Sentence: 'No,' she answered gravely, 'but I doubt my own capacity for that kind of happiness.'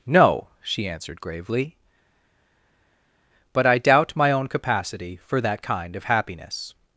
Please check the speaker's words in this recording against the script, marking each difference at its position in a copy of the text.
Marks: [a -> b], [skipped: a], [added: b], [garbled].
'No,' she answered gravely, 'but I doubt my own capacity for that kind of happiness.'